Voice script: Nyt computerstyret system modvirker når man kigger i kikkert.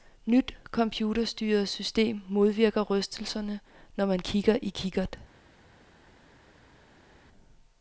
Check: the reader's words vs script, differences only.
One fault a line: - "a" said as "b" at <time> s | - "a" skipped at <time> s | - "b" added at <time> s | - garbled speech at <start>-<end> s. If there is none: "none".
- "rystelserne" added at 2.8 s